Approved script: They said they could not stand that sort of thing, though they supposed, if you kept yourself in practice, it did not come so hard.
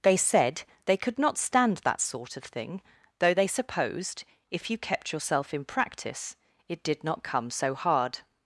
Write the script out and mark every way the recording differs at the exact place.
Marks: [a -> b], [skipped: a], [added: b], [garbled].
They said they could not stand that sort of thing, though they supposed, if you kept yourself in practice, it did not come so hard.